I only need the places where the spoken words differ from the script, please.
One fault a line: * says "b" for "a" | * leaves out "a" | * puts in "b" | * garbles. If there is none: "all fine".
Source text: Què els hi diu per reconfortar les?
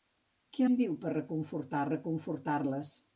* leaves out "els"
* puts in "reconfortar"